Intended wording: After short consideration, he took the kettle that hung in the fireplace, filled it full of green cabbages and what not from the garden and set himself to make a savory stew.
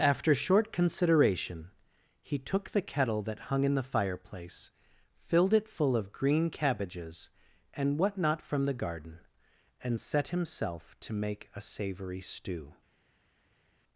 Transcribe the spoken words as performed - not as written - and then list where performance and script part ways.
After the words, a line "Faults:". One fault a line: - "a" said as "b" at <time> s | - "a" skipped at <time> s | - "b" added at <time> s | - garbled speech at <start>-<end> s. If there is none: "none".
After short consideration, he took the kettle that hung in the fireplace, filled it full of green cabbages and what not from the garden and set himself to make a savory stew.
Faults:
none